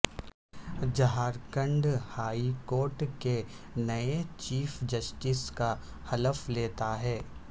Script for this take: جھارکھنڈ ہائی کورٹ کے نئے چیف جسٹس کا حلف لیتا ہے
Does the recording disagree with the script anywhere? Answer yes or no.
no